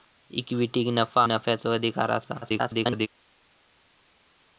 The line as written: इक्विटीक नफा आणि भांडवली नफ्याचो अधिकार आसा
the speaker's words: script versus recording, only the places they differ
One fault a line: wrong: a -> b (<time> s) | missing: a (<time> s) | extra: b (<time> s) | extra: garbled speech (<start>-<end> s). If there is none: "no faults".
missing: आणि भांडवली (1.2 s)
extra: garbled speech (2.4-3.1 s)